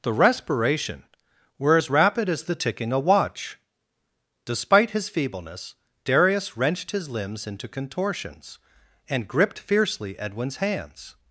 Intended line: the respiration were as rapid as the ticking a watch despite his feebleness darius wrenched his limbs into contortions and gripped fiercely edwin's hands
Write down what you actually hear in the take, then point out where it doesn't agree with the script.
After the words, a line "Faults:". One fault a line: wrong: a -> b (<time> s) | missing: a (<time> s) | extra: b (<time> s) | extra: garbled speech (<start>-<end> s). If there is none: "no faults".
the respiration were as rapid as the ticking a watch despite his feebleness darius wrenched his limbs into contortions and gripped fiercely edwin's hands
Faults:
no faults